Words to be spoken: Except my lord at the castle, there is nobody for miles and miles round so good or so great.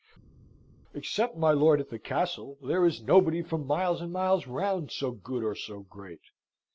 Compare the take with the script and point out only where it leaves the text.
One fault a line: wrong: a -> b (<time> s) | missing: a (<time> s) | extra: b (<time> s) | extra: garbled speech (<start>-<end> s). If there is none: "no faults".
no faults